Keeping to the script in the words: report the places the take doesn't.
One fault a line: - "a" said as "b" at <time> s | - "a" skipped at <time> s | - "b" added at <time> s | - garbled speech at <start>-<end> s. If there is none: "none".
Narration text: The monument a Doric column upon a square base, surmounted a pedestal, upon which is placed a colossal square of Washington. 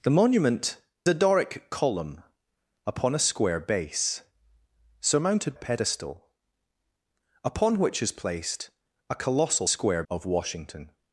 none